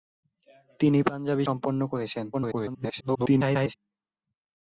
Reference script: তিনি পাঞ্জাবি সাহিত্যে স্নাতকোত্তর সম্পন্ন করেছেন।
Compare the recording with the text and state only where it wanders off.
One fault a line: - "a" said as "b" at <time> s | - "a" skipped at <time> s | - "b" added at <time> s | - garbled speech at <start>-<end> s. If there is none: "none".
- "সাহিত্যে স্নাতকোত্তর" skipped at 1.4 s
- garbled speech at 2.3-3.7 s